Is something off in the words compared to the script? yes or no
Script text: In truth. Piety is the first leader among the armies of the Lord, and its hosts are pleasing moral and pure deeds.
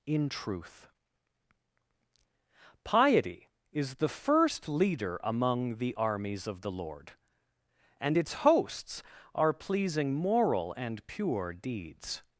no